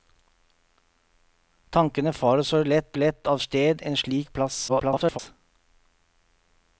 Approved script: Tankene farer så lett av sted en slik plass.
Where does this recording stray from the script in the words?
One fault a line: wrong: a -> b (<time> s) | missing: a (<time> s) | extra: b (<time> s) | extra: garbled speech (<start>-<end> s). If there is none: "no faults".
extra: lett (2.9 s)
extra: garbled speech (4.7-5.2 s)